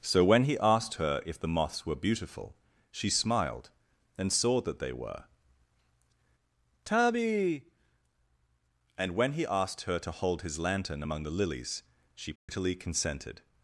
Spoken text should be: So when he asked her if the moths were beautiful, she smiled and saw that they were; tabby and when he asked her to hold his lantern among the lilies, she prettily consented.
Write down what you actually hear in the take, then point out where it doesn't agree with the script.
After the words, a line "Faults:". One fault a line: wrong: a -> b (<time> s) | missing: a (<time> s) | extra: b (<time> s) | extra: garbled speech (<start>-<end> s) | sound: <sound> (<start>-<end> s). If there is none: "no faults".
So when he asked her if the moths were beautiful, she smiled and saw that they were; tabby and when he asked her to hold his lantern among the lilies, she prettily consented.
Faults:
sound: dropout (12.4-12.5 s)